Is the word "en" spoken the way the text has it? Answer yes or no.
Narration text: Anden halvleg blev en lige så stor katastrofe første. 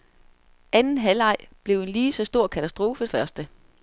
yes